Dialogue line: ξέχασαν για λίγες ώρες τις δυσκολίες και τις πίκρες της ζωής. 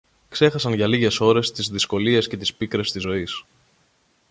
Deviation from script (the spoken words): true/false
false